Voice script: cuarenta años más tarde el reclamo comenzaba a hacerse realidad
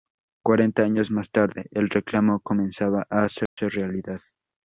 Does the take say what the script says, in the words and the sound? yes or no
no